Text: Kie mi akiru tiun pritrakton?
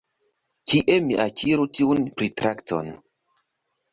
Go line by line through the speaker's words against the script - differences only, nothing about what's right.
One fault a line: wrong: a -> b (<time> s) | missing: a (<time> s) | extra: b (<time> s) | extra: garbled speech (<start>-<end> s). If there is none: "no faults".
no faults